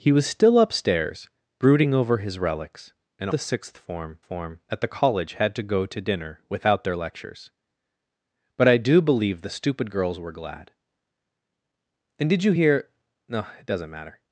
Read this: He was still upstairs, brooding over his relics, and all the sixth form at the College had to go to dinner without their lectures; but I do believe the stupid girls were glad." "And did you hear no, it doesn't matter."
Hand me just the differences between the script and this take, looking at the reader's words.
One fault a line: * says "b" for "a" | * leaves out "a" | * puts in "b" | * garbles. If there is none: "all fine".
* leaves out "all"
* puts in "form"